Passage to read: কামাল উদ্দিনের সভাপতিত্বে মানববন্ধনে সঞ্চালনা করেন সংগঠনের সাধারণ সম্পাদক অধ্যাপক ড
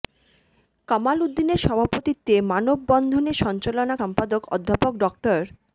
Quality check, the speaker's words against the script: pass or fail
fail